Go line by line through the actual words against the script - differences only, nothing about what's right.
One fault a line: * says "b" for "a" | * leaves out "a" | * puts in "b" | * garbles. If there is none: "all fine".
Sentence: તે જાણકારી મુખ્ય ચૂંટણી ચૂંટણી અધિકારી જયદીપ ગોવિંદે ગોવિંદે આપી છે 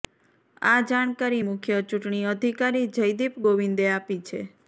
* says "આ" for "તે"
* leaves out "ચૂંટણી"
* leaves out "ગોવિંદે"